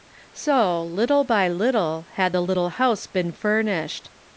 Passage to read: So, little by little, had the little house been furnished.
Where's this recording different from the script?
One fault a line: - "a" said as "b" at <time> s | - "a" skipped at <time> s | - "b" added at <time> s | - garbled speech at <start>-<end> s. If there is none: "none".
none